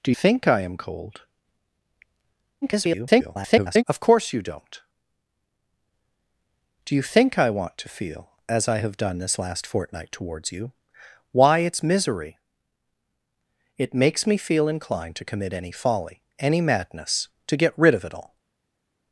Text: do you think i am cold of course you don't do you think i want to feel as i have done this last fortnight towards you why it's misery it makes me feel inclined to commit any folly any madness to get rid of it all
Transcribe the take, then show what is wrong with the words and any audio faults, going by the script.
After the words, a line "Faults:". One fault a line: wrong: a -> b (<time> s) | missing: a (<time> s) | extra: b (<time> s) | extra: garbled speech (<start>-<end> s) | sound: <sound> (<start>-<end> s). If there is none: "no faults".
do think i am cold [garbled] of course you don't do you think i want to feel as i have done this last fortnight towards you why it's misery it makes me feel inclined to commit any folly any madness to get rid of it all
Faults:
missing: you (0.1 s)
extra: garbled speech (2.6-3.8 s)